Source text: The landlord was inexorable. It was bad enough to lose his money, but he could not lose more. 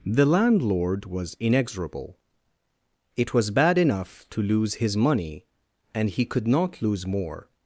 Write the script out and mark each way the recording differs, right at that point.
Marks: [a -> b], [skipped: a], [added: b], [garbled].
The landlord was inexorable. It was bad enough to lose his money, [but -> and] he could not lose more.